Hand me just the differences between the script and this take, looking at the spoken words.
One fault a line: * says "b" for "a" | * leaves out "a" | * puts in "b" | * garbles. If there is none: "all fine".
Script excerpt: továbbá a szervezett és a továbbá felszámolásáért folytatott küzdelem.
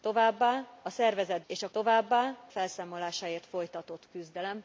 all fine